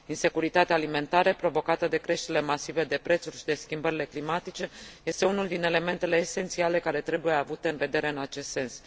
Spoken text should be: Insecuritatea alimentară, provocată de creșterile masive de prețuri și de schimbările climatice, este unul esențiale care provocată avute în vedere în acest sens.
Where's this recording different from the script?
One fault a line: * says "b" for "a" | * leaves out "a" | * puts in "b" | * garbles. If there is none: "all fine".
* puts in "din elementele"
* says "trebuie" for "provocată"